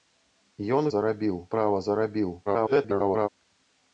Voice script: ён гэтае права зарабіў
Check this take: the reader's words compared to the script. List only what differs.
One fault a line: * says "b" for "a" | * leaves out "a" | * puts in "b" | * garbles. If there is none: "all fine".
* says "зарабіў" for "гэтае"
* garbles